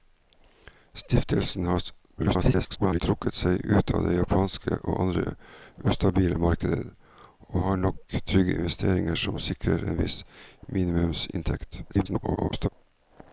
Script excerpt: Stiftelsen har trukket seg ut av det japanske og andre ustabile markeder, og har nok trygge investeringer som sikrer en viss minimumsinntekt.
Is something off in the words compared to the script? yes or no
yes